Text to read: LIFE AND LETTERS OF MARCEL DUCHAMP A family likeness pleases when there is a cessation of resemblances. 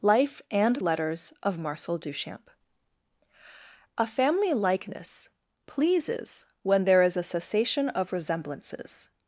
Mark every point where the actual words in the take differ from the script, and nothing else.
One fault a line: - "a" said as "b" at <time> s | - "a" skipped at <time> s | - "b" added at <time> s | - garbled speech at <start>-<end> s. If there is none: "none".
none